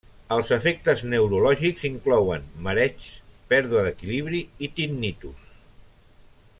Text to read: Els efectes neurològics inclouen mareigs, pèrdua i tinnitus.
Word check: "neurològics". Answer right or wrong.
right